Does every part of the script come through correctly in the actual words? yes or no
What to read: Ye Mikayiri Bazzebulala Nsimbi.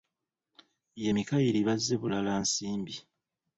yes